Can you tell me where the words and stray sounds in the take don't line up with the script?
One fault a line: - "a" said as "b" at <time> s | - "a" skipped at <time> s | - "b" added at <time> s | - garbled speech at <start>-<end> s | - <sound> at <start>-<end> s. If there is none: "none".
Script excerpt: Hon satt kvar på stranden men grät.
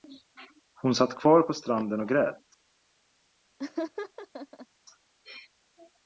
- "men" said as "och" at 2.0 s
- laugh at 3.6-4.7 s